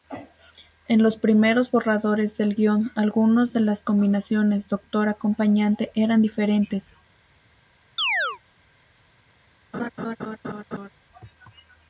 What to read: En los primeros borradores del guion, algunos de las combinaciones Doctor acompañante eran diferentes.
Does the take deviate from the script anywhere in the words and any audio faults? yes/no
yes